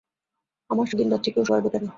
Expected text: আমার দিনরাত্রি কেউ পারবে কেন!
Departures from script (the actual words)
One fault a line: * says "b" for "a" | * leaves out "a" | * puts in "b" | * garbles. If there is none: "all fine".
all fine